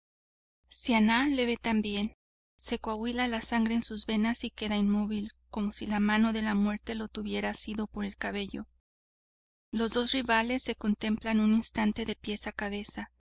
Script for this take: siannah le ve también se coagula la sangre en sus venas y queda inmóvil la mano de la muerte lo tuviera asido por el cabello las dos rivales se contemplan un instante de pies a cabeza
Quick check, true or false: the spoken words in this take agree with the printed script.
false